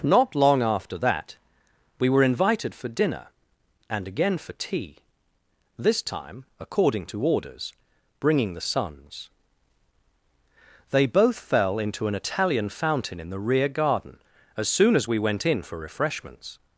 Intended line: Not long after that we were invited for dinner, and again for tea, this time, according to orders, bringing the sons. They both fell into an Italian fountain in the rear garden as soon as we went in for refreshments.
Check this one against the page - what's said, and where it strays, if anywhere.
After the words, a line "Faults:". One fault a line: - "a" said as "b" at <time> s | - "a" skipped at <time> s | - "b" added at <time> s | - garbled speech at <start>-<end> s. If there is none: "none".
Not long after that we were invited for dinner, and again for tea, this time, according to orders, bringing the sons. They both fell into an Italian fountain in the rear garden as soon as we went in for refreshments.
Faults:
none